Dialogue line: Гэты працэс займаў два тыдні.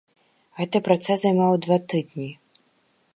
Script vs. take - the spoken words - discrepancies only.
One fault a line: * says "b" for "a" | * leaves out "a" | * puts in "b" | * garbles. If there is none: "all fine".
all fine